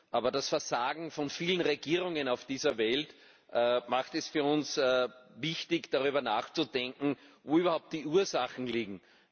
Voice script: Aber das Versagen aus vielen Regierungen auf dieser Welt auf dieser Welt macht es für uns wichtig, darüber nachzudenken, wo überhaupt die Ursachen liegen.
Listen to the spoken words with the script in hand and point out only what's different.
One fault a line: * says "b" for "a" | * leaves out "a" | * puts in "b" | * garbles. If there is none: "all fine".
* says "von" for "aus"
* leaves out "auf dieser Welt"